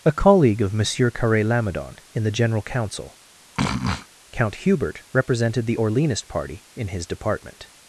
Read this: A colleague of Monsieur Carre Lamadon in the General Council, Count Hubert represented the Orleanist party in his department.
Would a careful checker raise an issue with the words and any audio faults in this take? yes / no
yes